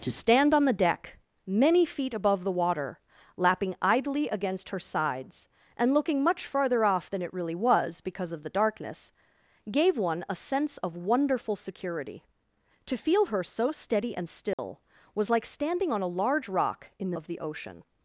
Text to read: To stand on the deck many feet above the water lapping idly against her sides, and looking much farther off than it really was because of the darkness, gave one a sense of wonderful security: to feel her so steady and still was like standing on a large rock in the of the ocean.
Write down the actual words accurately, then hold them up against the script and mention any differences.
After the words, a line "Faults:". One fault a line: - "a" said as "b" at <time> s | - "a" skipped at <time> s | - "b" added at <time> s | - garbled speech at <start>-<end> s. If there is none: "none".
To stand on the deck many feet above the water lapping idly against her sides, and looking much farther off than it really was because of the darkness, gave one a sense of wonderful security: to feel her so steady and still was like standing on a large rock in the of the ocean.
Faults:
none